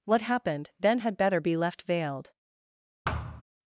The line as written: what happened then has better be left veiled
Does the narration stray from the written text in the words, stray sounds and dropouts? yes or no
yes